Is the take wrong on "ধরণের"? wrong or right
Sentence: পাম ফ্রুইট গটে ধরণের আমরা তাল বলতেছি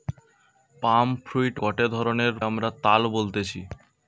right